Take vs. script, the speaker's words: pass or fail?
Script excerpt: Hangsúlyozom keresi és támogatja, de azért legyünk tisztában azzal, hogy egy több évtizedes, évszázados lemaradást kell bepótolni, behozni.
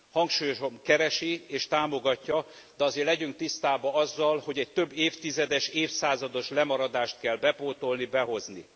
pass